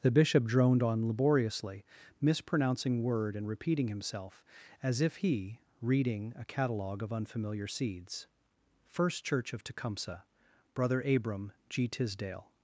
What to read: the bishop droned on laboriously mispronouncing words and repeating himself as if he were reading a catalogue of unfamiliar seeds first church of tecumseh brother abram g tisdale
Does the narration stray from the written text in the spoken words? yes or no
yes